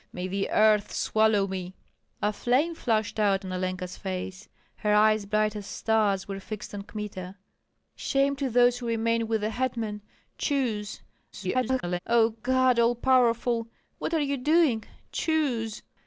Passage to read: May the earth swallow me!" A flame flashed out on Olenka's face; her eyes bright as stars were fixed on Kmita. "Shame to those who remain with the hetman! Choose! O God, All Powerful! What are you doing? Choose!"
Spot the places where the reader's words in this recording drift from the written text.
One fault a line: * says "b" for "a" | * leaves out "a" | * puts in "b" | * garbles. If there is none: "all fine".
* garbles